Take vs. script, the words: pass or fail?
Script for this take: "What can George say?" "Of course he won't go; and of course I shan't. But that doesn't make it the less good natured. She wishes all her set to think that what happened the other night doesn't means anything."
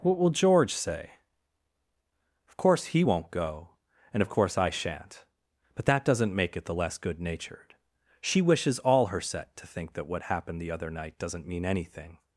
fail